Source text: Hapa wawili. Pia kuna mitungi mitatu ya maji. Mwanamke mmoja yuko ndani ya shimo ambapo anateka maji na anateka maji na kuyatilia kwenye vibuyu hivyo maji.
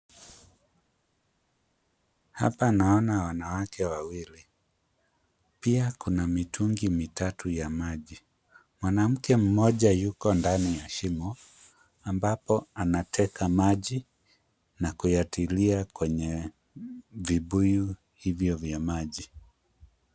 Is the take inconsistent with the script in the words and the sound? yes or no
yes